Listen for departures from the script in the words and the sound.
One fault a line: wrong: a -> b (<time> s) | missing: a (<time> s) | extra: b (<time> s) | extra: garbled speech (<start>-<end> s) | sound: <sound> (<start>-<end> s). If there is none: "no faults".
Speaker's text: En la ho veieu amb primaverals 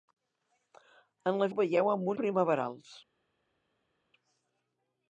no faults